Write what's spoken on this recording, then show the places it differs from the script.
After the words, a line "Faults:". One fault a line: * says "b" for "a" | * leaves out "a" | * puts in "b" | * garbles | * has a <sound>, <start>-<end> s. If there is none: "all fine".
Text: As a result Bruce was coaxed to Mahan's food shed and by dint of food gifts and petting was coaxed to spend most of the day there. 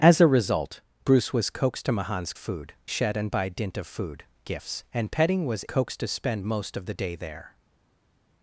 As a result Bruce was coaxed to Mahan's food shed and by dint of food gifts and petting was coaxed to spend most of the day there.
Faults:
all fine